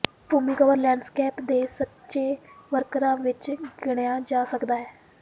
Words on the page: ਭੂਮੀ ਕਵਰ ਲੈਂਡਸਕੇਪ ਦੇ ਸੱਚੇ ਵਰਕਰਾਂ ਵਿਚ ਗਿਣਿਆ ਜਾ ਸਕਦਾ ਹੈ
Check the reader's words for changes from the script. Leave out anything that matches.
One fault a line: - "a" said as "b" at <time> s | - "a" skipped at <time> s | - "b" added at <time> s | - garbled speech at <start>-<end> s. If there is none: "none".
none